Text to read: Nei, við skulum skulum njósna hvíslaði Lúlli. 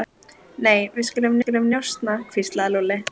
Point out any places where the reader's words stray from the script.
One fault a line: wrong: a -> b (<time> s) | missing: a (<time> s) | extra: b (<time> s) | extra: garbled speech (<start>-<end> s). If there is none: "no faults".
no faults